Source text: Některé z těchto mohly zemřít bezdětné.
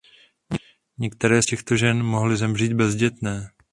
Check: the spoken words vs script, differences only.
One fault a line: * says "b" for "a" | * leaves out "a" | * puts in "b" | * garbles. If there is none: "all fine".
* puts in "žen"